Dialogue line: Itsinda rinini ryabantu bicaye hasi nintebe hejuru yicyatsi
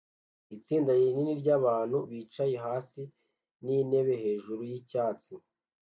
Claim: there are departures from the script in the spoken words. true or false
false